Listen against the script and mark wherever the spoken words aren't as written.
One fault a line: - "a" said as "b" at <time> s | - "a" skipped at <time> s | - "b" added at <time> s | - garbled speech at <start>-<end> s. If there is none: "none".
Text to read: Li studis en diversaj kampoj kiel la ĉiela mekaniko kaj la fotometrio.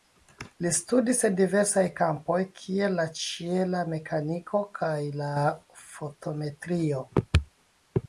none